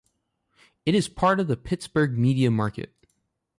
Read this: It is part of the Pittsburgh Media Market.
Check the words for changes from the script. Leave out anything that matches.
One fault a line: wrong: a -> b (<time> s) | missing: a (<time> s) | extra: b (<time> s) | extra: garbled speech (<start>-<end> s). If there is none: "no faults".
no faults